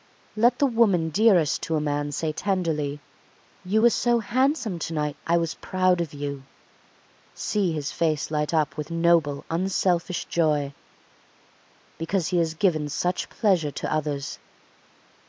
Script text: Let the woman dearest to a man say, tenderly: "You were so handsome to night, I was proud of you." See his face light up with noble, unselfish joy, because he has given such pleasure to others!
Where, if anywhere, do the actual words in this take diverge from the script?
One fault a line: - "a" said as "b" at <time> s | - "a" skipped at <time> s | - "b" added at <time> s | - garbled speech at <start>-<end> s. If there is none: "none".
none